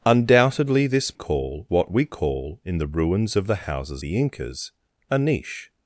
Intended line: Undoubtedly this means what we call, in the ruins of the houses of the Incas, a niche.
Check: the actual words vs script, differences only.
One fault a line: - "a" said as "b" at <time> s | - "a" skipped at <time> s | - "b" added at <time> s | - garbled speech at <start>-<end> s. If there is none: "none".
- "means" said as "call" at 1.1 s
- "of" skipped at 4.0 s